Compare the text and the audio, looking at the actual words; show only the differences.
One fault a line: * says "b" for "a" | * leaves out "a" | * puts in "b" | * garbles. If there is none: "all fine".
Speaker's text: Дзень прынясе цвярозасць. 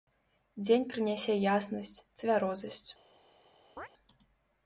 * puts in "яснасць"